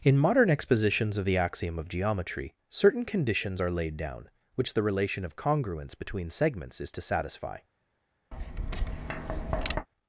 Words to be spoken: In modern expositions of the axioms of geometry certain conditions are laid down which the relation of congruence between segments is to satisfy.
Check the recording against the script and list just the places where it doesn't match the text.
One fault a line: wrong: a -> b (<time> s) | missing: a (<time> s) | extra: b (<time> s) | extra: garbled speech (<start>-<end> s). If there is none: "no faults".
wrong: axioms -> axiom (1.4 s)